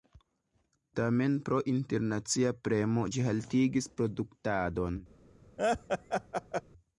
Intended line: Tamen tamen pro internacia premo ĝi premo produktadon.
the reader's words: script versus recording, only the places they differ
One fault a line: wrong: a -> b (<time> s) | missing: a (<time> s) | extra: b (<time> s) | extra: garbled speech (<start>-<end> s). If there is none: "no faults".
missing: tamen (1.3 s)
wrong: premo -> haltigis (3.3 s)